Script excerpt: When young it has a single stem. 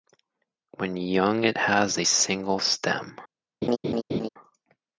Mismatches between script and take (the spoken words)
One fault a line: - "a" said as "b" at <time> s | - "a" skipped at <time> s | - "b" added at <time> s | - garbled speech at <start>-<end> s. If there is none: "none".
none